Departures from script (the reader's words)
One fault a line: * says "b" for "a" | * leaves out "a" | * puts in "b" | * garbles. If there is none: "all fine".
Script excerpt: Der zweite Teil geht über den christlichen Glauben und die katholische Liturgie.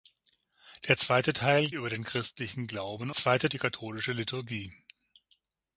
* leaves out "geht"
* says "zweite" for "und"